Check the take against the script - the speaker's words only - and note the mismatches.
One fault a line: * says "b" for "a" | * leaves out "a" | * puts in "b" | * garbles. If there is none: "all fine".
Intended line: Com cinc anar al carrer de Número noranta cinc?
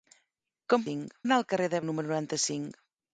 all fine